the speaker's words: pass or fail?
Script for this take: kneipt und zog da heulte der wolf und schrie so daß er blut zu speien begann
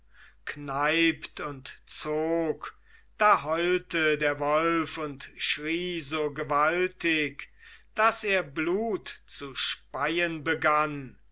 fail